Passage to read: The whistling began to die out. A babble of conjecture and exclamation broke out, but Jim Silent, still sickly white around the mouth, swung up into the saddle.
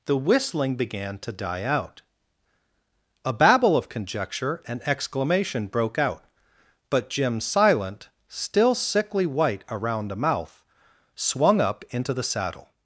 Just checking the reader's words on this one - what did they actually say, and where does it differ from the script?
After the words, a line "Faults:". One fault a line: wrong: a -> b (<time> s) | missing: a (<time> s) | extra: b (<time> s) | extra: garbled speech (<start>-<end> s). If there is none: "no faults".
The whistling began to die out. A babble of conjecture and exclamation broke out, but Jim Silent, still sickly white around the mouth, swung up into the saddle.
Faults:
no faults